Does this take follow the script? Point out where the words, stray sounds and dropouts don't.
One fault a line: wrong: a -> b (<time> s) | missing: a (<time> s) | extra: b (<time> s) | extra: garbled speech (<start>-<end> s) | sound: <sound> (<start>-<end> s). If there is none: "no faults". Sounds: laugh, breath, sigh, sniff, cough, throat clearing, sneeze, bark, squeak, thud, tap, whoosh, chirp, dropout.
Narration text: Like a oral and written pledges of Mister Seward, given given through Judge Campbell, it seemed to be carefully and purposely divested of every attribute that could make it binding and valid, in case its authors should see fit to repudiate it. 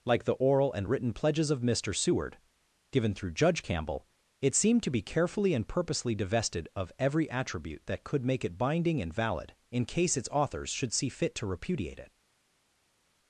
wrong: a -> the (0.2 s)
missing: given (3.2 s)